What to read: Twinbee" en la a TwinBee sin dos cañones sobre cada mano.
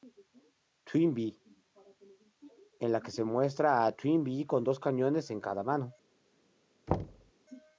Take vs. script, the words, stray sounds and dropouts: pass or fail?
fail